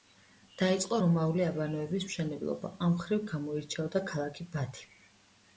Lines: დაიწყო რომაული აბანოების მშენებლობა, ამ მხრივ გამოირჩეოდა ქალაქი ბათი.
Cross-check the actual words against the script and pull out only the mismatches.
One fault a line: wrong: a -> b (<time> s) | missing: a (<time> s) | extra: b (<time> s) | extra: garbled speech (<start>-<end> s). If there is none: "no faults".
no faults